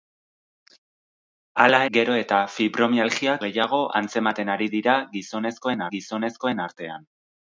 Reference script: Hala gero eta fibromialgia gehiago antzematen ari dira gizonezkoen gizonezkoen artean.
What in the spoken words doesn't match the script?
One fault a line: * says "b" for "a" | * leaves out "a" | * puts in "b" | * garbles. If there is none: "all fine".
all fine